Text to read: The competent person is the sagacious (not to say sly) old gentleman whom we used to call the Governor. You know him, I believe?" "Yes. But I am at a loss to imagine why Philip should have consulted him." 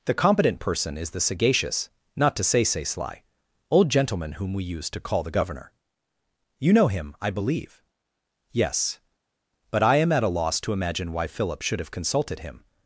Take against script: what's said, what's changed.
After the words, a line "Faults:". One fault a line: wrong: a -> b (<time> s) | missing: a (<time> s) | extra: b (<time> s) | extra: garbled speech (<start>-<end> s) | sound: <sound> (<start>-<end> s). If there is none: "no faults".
The competent person is the sagacious (not to say say sly) old gentleman whom we used to call the Governor. You know him, I believe?" "Yes. But I am at a loss to imagine why Philip should have consulted him."
Faults:
extra: say (2.6 s)